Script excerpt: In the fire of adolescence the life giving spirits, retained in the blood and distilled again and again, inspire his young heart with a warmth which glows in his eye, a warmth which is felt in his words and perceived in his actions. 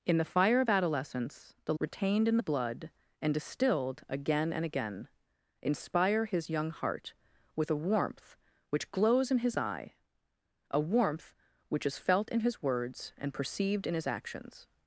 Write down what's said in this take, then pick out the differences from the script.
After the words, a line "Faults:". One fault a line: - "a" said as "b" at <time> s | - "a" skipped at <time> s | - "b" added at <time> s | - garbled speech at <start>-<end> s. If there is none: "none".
In the fire of adolescence the retained in the blood and distilled again and again, inspire his young heart with a warmth which glows in his eye, a warmth which is felt in his words and perceived in his actions.
Faults:
- "life giving spirits" skipped at 1.8 s